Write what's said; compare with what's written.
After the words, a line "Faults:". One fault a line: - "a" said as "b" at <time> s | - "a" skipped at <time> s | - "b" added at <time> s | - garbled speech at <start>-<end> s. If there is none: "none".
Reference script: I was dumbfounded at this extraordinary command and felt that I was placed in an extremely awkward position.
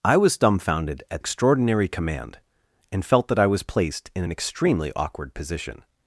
I was dumbfounded at extraordinary command and felt that I was placed in an extremely awkward position.
Faults:
- "this" skipped at 1.2 s